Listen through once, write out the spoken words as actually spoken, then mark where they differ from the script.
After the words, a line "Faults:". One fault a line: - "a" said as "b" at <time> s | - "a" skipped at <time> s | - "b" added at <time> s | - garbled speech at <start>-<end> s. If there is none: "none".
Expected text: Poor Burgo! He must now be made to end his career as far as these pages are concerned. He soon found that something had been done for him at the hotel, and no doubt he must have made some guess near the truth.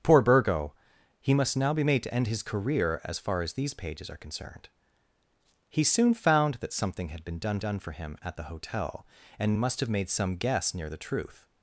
Poor Burgo! He must now be made to end his career as far as these pages are concerned. He soon found that something had been done done for him at the hotel, and must have made some guess near the truth.
Faults:
- "done" added at 7.6 s
- "no doubt he" skipped at 9.5 s